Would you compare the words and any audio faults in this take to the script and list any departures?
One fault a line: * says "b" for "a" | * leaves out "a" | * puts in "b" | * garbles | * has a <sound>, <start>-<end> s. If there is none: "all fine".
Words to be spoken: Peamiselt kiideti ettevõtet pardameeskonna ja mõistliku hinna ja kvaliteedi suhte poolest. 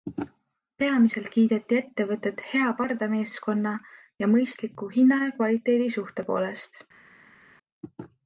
* puts in "hea"